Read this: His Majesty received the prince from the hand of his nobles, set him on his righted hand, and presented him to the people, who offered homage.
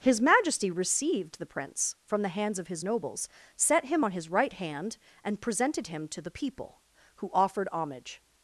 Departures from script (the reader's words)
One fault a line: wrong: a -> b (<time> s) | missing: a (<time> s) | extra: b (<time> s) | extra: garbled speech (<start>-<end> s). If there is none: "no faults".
wrong: hand -> hands (2.3 s)
wrong: righted -> right (4.3 s)